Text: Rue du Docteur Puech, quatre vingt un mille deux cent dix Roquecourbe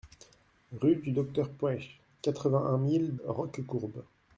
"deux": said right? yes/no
no